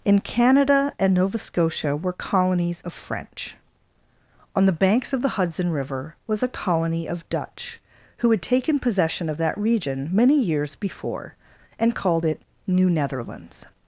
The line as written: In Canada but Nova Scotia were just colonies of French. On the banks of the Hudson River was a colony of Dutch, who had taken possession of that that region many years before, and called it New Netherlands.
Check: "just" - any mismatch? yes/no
yes